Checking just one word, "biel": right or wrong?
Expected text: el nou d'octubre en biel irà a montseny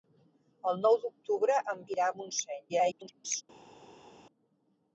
wrong